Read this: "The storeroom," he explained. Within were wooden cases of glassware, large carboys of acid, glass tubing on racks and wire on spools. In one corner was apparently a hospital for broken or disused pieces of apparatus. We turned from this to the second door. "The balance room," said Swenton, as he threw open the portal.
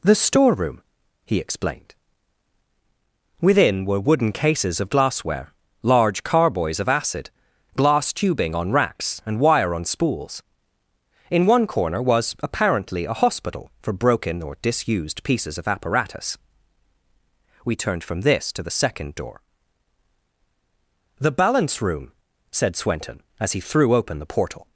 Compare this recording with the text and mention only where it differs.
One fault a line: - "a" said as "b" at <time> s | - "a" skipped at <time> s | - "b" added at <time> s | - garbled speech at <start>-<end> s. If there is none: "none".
none